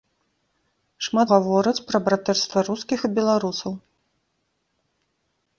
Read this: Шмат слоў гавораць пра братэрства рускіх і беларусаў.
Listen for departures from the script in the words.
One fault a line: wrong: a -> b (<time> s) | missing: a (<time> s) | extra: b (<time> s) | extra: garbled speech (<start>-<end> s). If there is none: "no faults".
missing: слоў (1.3 s)